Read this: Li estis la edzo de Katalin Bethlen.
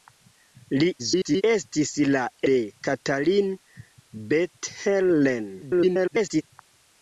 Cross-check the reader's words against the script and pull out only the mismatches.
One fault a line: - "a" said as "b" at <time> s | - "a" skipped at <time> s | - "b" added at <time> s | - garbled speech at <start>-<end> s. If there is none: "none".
- garbled speech at 1.0-1.4 s
- "edzo" skipped at 2.2 s
- garbled speech at 5.6-6.4 s